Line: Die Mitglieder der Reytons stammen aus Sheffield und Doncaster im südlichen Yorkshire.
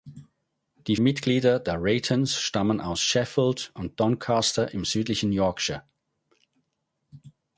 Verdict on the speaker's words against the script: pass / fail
pass